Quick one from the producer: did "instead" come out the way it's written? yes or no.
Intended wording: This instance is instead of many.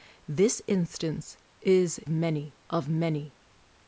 no